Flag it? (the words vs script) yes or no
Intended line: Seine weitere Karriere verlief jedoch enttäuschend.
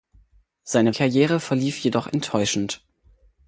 yes